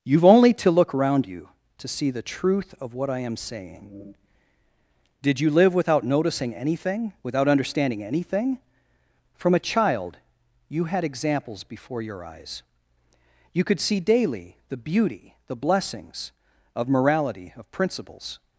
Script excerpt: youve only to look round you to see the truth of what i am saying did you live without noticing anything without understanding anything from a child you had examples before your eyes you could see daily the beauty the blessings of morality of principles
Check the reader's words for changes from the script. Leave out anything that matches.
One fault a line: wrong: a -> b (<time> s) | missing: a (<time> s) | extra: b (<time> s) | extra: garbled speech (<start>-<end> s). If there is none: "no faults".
wrong: round -> around (0.9 s)